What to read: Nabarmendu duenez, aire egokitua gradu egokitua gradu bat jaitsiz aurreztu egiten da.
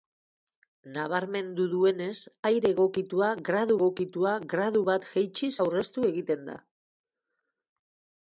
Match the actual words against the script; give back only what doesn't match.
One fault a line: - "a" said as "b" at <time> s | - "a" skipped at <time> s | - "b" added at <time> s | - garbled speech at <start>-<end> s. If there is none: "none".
none